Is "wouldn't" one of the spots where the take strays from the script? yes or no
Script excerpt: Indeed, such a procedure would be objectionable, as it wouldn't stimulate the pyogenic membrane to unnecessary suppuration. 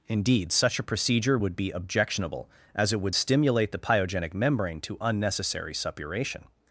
yes